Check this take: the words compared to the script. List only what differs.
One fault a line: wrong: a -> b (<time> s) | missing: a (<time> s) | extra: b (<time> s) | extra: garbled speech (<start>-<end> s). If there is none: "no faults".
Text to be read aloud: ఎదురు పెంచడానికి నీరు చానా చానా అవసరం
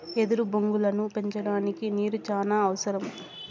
extra: బొంగులను (0.5 s)
missing: చానా (2.6 s)